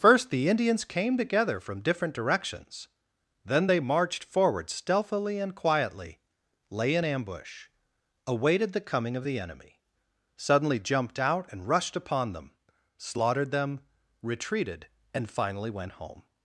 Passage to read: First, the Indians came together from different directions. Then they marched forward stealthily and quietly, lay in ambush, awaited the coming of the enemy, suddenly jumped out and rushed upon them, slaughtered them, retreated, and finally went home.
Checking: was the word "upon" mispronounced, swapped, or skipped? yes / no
no